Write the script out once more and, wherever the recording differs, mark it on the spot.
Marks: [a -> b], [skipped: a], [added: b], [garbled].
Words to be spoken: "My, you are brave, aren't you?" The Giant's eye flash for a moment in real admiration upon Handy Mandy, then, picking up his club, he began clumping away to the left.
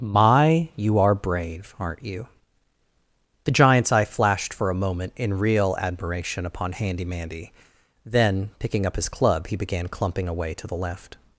"My, you are brave, aren't you?" The Giant's eye [flash -> flashed] for a moment in real admiration upon Handy Mandy, then, picking up his club, he began clumping away to the left.